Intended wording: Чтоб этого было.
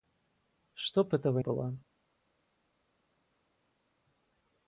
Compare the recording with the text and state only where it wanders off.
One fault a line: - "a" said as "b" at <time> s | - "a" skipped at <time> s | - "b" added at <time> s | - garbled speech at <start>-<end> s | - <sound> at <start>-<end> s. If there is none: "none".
none